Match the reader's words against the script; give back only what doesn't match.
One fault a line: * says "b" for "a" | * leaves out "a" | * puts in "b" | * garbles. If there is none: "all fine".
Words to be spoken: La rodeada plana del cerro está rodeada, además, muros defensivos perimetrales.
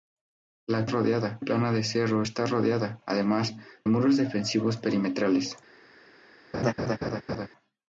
all fine